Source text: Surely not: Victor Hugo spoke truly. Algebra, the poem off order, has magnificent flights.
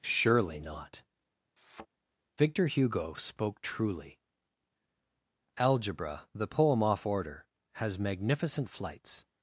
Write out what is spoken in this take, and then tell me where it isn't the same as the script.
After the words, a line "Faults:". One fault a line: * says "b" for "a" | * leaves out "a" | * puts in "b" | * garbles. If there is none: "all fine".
Surely not: Victor Hugo spoke truly. Algebra, the poem off order, has magnificent flights.
Faults:
all fine